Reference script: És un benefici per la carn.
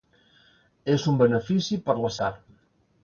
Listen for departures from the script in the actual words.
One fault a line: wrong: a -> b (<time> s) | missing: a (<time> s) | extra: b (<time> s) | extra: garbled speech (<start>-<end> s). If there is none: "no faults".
no faults